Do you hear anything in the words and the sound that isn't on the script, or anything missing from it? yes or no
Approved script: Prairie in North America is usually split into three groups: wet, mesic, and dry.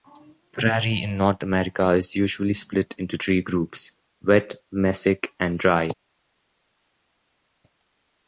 no